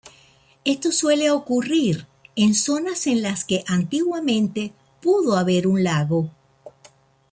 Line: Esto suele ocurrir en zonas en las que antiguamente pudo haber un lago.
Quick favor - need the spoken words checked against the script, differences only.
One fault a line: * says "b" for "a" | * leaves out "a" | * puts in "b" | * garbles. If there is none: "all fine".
all fine